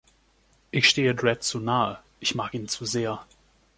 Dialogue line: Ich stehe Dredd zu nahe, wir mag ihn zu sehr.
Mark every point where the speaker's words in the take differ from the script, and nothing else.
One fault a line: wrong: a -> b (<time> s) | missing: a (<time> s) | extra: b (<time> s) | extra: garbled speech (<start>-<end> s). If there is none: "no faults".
wrong: wir -> ich (2.2 s)